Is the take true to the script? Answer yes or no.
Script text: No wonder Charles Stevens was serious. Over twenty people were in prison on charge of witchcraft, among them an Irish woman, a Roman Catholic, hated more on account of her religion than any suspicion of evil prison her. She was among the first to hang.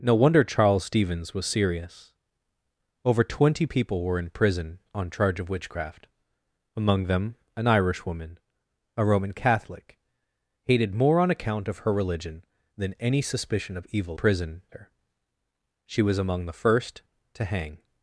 yes